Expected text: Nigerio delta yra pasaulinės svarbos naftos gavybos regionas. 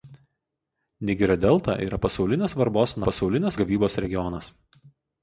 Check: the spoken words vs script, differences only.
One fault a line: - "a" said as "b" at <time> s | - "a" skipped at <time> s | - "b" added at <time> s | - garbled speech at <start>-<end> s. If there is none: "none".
- "naftos" said as "pasaulinės" at 3.1 s